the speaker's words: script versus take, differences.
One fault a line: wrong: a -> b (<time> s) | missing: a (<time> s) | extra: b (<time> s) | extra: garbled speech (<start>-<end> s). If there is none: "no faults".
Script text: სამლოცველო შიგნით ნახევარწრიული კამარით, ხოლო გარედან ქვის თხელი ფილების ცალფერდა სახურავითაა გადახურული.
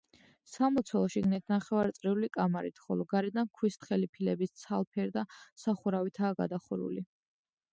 no faults